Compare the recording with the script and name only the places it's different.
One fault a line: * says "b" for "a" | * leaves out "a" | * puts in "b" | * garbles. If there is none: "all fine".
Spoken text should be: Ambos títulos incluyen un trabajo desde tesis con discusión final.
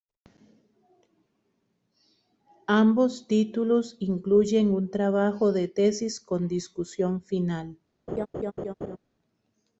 * says "de" for "desde"